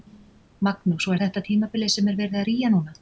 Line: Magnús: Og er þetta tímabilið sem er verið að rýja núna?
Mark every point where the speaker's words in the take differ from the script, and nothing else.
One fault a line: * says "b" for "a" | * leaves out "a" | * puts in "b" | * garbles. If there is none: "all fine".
all fine